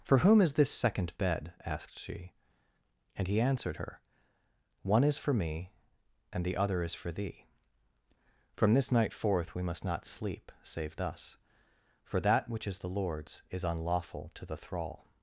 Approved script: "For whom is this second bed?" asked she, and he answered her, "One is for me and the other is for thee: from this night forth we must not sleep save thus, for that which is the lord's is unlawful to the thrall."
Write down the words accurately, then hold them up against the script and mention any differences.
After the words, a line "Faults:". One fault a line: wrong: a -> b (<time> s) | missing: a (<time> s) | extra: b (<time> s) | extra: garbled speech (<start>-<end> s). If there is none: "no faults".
"For whom is this second bed?" asked she, and he answered her, "One is for me and the other is for thee: from this night forth we must not sleep save thus, for that which is the lord's is unlawful to the thrall."
Faults:
no faults